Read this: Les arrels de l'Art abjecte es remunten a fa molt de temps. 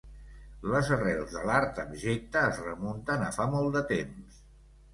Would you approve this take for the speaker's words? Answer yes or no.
yes